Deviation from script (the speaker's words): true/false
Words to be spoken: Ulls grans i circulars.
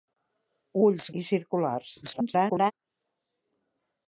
true